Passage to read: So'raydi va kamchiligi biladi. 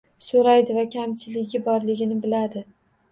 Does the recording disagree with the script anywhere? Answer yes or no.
yes